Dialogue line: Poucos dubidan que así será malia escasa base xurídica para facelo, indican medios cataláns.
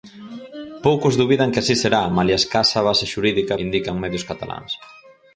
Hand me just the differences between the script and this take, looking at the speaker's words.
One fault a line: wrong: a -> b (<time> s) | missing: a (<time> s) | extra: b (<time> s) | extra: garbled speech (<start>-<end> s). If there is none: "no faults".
missing: para facelo (3.5 s)